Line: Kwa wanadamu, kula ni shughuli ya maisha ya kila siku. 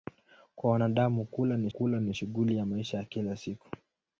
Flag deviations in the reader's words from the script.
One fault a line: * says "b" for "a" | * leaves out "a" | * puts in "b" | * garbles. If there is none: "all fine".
* puts in "kula ni"